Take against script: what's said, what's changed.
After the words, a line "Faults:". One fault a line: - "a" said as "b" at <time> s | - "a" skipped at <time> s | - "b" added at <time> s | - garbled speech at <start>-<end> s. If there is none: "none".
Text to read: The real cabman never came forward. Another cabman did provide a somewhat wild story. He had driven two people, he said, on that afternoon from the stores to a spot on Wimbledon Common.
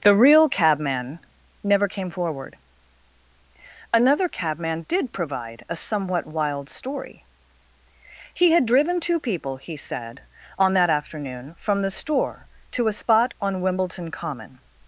The real cabman never came forward. Another cabman did provide a somewhat wild story. He had driven two people, he said, on that afternoon from the store to a spot on Wimbledon Common.
Faults:
- "stores" said as "store" at 11.9 s